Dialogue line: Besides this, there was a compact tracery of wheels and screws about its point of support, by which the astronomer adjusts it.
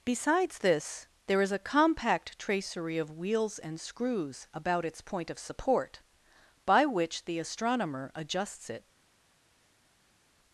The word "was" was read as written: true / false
false